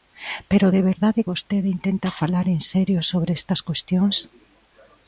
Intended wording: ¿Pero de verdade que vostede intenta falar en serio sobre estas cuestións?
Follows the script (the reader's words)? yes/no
no